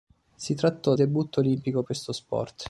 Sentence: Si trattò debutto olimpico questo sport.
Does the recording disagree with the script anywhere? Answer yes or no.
no